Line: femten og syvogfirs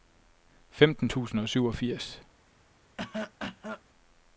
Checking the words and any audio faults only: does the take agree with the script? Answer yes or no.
no